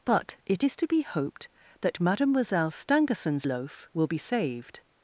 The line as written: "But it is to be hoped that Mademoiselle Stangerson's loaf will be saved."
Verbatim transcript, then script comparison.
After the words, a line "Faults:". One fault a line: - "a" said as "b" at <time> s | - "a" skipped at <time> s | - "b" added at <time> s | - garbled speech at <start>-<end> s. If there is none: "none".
"But it is to be hoped that Mademoiselle Stangerson's loaf will be saved."
Faults:
none